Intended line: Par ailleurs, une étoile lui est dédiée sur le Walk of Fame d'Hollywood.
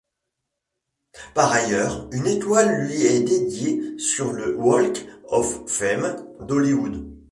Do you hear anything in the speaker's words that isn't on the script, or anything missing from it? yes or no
no